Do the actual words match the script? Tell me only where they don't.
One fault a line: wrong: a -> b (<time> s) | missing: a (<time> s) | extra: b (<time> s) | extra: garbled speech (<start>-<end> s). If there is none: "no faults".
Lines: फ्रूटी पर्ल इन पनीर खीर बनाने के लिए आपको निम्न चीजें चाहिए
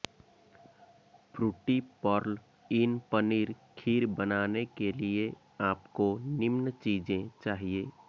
no faults